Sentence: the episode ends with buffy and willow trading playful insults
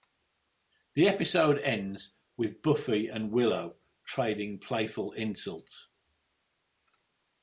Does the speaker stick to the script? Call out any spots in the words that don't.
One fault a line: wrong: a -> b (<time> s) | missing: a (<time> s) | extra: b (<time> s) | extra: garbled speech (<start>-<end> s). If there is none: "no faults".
no faults